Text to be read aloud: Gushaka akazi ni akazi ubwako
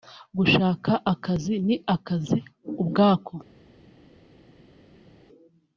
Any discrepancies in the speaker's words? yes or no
no